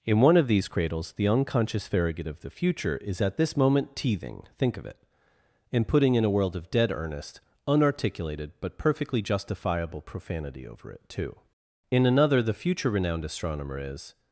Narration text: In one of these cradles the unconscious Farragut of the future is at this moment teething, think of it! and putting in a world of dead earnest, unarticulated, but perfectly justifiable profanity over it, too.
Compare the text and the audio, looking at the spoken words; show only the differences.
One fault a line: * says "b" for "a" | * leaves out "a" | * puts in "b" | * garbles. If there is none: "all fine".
* puts in "In another the future renowned astronomer is"